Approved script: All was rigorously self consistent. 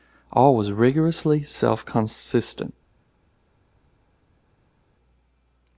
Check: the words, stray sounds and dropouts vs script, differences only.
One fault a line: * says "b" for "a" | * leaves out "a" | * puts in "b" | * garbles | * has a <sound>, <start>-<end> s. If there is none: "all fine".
all fine